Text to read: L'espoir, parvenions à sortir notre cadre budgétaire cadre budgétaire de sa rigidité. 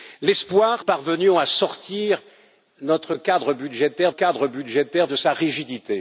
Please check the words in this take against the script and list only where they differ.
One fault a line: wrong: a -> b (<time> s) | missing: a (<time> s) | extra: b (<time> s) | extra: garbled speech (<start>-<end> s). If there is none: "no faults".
no faults